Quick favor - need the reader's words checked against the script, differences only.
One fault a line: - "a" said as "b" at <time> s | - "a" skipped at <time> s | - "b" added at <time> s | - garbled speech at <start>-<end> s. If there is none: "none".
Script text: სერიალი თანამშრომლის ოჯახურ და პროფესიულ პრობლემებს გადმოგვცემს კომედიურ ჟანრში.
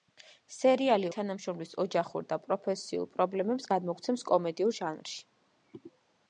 none